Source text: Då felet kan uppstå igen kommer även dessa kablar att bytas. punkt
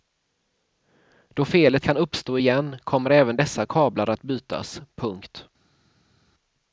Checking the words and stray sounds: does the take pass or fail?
pass